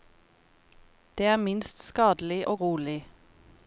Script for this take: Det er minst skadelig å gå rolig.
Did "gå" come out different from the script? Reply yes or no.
yes